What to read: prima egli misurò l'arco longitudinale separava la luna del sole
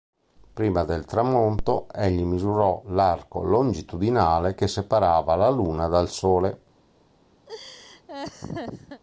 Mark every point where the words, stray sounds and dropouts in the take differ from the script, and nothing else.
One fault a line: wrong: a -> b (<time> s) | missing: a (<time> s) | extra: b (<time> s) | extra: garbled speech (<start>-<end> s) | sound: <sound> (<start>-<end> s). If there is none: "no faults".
extra: del tramonto (0.8 s)
extra: che (4.5 s)
wrong: del -> dal (5.9 s)
sound: laugh (7.5-9.0 s)